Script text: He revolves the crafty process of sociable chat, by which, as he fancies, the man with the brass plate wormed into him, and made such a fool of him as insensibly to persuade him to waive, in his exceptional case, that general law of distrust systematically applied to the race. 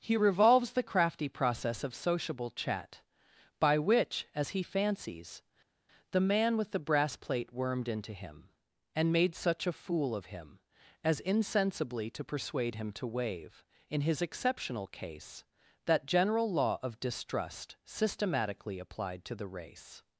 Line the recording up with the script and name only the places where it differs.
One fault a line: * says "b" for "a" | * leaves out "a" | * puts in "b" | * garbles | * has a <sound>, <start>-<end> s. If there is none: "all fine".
all fine